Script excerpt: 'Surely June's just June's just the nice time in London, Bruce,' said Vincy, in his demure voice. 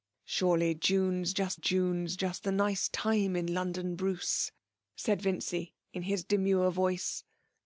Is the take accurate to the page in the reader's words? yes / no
yes